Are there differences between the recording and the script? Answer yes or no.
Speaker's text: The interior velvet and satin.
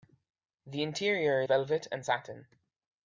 no